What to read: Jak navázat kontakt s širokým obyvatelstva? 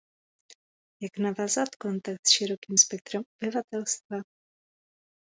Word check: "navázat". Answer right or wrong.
right